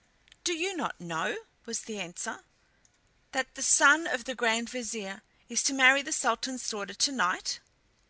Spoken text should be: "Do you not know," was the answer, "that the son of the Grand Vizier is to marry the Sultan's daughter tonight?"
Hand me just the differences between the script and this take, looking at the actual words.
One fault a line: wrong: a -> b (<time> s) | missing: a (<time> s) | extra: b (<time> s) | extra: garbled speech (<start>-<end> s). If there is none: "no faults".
no faults